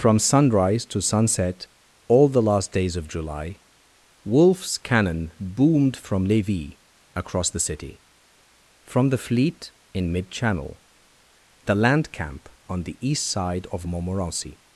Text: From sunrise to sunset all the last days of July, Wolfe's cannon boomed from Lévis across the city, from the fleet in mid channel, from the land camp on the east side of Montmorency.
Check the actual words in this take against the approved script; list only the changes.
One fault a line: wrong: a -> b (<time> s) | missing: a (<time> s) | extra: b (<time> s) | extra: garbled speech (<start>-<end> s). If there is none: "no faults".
missing: from (10.8 s)